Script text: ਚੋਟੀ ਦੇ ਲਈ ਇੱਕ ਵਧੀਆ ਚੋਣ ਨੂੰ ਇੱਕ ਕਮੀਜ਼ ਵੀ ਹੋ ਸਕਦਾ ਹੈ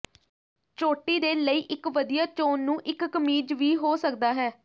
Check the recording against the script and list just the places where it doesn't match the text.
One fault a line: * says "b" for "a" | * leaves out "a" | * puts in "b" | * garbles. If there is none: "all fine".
all fine